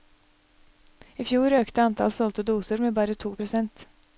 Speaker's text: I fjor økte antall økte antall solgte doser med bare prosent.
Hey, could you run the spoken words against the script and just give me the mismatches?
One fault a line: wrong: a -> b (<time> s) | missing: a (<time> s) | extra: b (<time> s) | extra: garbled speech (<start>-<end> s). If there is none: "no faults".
missing: økte antall (2.2 s)
extra: to (3.2 s)